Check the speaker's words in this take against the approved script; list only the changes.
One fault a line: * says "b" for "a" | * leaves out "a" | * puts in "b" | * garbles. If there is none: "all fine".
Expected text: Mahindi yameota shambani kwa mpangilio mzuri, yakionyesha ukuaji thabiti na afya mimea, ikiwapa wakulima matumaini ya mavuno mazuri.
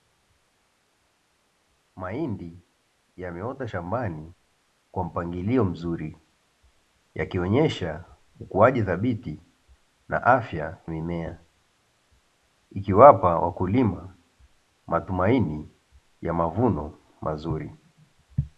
all fine